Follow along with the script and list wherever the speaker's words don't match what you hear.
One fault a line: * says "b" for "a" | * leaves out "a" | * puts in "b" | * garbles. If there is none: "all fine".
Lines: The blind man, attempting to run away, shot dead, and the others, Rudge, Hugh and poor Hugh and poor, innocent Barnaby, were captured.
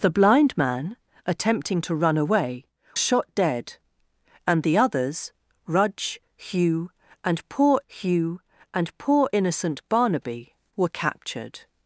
all fine